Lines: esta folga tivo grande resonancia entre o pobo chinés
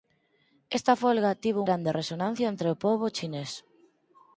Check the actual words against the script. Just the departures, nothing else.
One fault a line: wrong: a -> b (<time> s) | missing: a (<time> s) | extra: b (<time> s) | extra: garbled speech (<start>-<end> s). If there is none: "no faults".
no faults